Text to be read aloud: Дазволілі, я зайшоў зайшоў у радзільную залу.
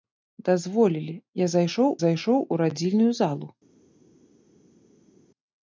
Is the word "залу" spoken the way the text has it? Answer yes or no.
yes